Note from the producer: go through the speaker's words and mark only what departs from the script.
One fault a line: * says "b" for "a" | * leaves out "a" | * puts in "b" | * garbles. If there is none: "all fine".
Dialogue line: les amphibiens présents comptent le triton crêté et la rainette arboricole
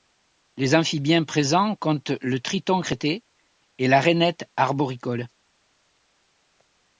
all fine